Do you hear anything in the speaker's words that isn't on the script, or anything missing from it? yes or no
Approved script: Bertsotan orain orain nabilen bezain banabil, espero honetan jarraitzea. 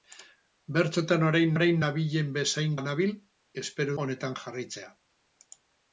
no